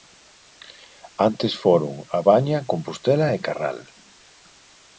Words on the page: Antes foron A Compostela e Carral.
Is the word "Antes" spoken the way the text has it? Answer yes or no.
yes